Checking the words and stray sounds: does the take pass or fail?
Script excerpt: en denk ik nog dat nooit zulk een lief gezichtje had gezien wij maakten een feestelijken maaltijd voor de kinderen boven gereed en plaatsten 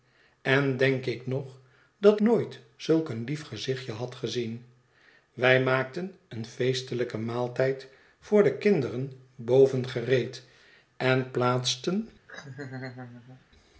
fail